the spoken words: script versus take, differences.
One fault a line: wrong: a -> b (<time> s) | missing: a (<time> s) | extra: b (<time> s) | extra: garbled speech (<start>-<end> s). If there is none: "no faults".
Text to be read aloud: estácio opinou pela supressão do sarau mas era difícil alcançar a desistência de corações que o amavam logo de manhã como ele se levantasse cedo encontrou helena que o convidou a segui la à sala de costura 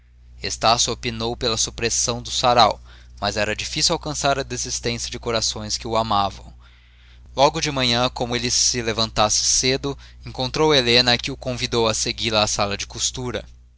no faults